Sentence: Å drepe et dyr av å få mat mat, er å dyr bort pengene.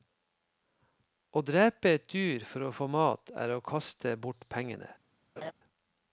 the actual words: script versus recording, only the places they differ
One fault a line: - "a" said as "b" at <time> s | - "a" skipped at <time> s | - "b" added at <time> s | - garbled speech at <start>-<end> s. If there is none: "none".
- "av" said as "for" at 2.5 s
- "mat" skipped at 3.3 s
- "dyr" said as "kaste" at 3.6 s